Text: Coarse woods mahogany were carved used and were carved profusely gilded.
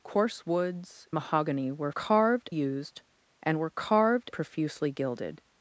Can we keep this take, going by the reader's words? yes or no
yes